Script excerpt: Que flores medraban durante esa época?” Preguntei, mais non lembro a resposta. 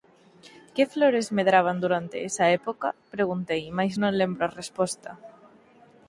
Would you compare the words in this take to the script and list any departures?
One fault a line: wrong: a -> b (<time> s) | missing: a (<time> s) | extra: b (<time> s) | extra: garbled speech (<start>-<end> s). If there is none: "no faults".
no faults